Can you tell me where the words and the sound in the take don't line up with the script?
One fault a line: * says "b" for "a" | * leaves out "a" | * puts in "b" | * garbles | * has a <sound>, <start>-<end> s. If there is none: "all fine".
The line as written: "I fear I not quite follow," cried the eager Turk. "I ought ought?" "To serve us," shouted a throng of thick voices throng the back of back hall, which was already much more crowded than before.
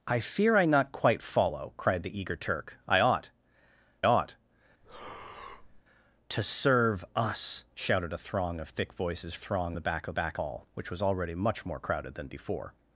* has a breath, 4.8-5.8 s